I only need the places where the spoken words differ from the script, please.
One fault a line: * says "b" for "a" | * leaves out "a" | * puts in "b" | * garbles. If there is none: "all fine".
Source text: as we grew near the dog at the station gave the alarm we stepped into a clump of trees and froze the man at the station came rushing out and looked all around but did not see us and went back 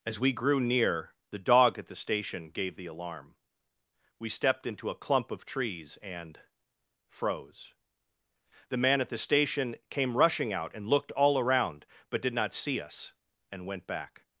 all fine